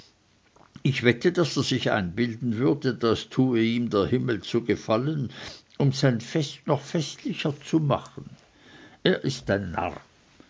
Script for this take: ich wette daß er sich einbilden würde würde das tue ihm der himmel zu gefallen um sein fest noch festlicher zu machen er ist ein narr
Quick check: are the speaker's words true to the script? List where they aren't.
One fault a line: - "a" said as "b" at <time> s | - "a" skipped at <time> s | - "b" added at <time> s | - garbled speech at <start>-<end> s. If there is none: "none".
- "würde" skipped at 2.9 s